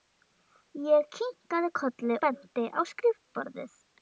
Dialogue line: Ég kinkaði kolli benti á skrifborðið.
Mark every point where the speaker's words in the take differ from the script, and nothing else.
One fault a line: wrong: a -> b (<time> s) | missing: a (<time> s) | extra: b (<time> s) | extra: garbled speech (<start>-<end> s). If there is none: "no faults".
no faults